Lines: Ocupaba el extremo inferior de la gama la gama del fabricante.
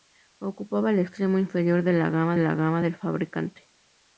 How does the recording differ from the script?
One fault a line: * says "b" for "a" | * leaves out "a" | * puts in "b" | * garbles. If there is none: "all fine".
all fine